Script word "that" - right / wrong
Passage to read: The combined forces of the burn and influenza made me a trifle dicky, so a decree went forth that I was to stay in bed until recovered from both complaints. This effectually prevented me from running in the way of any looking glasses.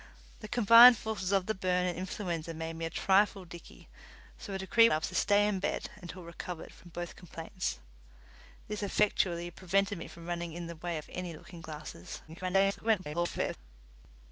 wrong